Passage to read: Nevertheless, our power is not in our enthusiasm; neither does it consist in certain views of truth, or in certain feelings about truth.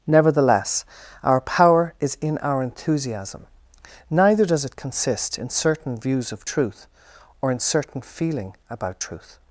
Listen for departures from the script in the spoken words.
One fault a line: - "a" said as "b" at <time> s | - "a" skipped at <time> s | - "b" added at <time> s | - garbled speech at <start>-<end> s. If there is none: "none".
- "not" skipped at 2.2 s
- "feelings" said as "feeling" at 8.0 s